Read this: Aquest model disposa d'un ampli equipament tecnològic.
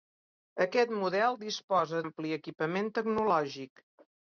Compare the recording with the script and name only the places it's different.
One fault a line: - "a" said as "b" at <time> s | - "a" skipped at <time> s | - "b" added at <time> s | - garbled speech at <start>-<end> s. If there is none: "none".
- "d'un" skipped at 2.0 s